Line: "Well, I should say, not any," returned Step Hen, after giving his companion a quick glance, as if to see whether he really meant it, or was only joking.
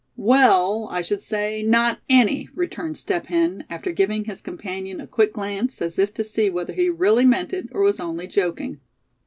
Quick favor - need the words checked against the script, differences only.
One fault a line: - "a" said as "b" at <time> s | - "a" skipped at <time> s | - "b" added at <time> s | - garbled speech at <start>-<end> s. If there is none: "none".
none